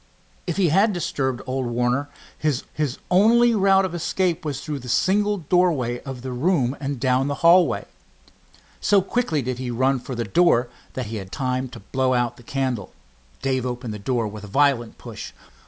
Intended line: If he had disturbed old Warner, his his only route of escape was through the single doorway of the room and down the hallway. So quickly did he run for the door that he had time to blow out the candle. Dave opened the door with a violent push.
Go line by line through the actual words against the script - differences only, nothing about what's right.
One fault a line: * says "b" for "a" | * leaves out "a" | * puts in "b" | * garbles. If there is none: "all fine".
all fine